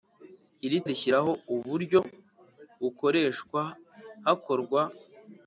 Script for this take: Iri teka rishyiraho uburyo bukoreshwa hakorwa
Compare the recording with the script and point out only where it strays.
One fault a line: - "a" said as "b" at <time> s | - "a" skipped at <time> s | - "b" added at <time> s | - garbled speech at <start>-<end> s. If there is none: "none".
- "teka" skipped at 0.8 s